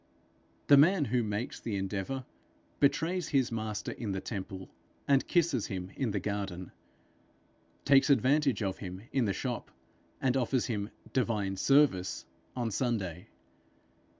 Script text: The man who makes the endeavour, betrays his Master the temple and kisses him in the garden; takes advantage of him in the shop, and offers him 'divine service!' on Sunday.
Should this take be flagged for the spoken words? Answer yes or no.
yes